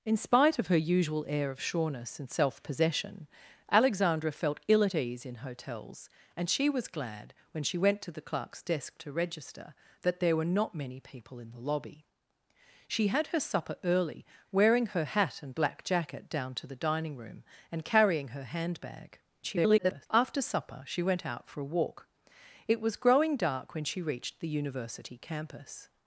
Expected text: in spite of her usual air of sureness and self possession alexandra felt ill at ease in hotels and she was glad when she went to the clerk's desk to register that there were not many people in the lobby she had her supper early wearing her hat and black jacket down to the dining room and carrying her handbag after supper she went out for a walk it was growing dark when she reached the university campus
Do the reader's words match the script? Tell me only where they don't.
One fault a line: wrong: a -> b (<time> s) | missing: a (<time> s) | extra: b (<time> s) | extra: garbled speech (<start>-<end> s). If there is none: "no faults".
extra: garbled speech (19.4-20.1 s)